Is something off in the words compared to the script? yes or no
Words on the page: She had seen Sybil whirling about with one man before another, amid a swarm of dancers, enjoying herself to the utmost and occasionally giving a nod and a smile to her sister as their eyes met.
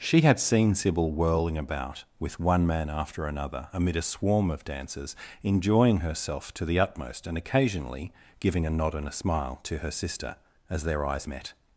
yes